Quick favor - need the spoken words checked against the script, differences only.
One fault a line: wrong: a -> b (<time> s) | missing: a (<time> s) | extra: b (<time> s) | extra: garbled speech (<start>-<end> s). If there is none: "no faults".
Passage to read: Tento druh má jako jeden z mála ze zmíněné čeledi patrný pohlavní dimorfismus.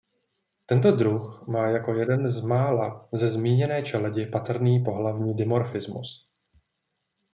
no faults